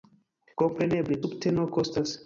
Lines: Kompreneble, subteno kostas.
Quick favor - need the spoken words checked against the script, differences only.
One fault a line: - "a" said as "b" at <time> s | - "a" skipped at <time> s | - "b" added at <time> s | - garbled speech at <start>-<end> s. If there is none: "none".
none